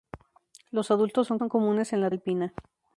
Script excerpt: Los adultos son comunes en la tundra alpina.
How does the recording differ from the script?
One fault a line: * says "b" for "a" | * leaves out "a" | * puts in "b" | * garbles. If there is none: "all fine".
* puts in "son"
* leaves out "tundra"